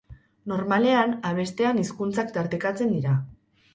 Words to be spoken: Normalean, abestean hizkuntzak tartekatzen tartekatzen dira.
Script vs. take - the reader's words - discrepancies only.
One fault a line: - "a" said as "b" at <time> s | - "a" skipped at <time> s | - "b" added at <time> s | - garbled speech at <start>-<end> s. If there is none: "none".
- "tartekatzen" skipped at 3.0 s